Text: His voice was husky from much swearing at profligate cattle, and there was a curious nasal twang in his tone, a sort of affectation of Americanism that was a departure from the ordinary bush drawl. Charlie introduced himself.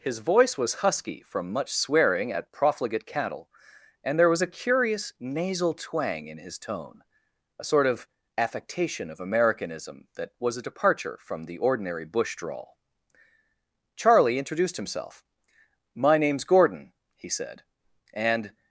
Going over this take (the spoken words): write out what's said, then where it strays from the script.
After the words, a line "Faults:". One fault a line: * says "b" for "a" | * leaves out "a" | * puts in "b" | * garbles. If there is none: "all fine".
His voice was husky from much swearing at profligate cattle, and there was a curious nasal twang in his tone, a sort of affectation of Americanism that was a departure from the ordinary bush drawl. Charlie introduced himself. "My name's Gordon," he said, "and
Faults:
* puts in "My name's Gordon he said and"